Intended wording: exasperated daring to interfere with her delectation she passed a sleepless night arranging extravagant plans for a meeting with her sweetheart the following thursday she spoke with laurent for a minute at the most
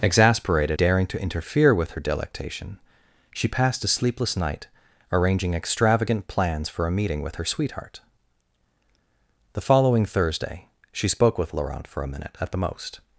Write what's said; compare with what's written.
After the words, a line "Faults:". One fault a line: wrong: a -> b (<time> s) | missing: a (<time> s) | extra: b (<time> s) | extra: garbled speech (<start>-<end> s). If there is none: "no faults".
exasperated daring to interfere with her delectation she passed a sleepless night arranging extravagant plans for a meeting with her sweetheart the following thursday she spoke with laurent for a minute at the most
Faults:
no faults